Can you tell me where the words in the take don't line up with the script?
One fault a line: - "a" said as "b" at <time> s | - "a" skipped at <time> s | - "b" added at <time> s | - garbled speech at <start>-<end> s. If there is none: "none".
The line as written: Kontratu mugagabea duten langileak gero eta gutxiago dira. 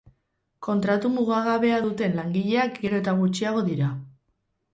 none